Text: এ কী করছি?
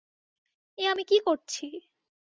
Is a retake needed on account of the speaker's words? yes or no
yes